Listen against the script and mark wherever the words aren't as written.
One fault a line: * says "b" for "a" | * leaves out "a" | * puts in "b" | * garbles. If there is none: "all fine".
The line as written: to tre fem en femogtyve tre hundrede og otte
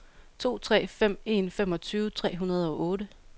all fine